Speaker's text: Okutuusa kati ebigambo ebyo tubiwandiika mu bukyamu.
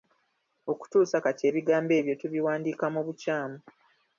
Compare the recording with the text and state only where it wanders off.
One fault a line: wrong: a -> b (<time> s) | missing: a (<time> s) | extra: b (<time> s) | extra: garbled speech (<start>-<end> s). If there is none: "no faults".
no faults